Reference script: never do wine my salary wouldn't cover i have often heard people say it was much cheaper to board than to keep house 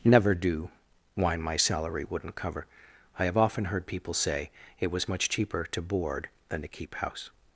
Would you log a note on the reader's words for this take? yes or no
no